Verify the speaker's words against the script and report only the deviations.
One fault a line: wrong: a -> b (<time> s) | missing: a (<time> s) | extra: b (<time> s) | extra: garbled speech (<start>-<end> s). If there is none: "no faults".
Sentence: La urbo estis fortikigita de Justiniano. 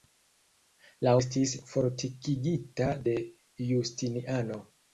missing: urbo (1.1 s)